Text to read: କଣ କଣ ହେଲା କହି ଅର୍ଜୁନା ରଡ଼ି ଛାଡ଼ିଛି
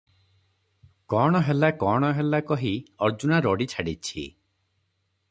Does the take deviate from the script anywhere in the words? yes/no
yes